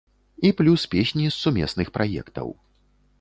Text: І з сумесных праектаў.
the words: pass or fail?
fail